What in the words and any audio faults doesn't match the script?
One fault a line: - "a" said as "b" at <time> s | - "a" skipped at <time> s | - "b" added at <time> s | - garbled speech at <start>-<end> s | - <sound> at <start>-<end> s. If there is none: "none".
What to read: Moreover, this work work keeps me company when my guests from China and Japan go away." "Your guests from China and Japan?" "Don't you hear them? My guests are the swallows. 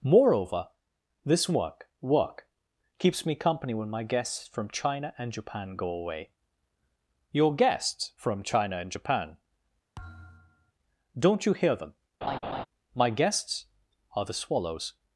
- thud at 10.0-10.7 s
- laugh at 12.2-12.7 s